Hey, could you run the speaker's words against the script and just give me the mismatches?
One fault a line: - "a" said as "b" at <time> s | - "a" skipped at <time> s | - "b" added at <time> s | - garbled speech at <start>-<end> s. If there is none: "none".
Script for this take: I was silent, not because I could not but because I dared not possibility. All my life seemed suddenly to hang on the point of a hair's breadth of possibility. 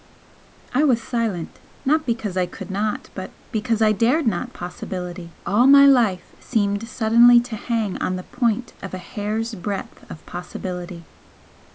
none